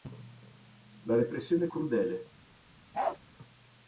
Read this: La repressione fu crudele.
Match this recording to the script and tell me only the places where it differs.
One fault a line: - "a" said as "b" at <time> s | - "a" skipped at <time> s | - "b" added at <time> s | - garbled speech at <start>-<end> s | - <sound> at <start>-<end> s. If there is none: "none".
- "fu" skipped at 1.7 s
- bark at 2.9-3.2 s